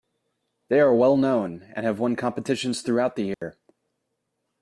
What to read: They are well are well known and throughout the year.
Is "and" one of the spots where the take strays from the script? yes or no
yes